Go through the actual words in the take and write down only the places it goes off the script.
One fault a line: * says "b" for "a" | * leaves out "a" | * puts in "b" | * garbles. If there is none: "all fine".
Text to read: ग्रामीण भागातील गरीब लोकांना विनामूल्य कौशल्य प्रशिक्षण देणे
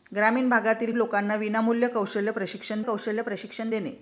* leaves out "गरीब"
* puts in "कौशल्य प्रशिक्षण"